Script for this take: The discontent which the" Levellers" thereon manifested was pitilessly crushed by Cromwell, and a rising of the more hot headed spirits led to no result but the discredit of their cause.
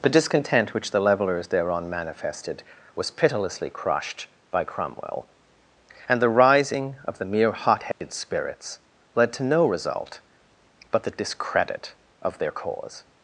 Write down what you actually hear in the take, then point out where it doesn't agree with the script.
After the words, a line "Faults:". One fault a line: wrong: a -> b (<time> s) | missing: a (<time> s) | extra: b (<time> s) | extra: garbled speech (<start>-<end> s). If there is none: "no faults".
The discontent which the" Levellers" thereon manifested was pitilessly crushed by Cromwell, and the rising of the mere hot headed spirits led to no result but the discredit of their cause.
Faults:
wrong: a -> the (6.2 s)
wrong: more -> mere (7.2 s)